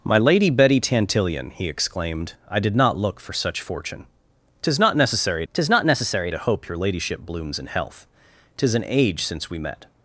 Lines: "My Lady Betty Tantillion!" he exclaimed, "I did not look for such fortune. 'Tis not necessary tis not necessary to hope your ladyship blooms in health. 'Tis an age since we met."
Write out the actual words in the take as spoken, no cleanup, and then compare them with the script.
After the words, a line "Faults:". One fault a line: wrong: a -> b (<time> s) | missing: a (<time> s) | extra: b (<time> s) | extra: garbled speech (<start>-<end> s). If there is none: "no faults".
"My Lady Betty Tantillion!" he exclaimed, "I did not look for such fortune. 'Tis not necessary tis not necessary to hope your ladyship blooms in health. 'Tis an age since we met."
Faults:
no faults